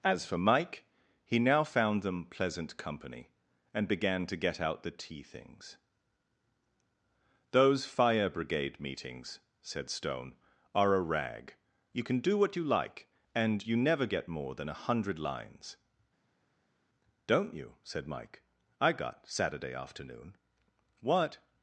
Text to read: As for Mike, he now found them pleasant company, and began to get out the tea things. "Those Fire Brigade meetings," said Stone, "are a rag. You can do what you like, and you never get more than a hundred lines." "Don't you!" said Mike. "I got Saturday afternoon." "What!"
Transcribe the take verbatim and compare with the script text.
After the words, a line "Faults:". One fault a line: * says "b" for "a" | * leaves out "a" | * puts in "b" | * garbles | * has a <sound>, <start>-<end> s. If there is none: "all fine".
As for Mike, he now found them pleasant company, and began to get out the tea things. "Those Fire Brigade meetings," said Stone, "are a rag. You can do what you like, and you never get more than a hundred lines." "Don't you!" said Mike. "I got Saturday afternoon." "What!"
Faults:
all fine